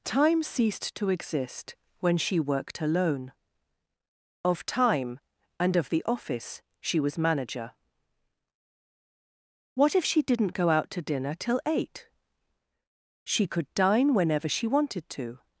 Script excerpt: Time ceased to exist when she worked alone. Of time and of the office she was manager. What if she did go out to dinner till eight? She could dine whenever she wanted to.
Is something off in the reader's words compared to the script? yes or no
yes